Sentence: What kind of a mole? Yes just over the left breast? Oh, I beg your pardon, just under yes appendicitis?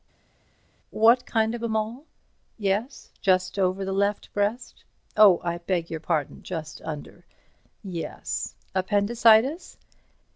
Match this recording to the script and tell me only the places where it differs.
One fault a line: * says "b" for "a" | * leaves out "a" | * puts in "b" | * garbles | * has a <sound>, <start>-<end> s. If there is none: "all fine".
all fine